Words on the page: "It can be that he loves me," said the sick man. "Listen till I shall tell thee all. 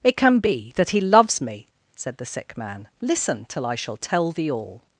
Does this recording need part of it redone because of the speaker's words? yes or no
no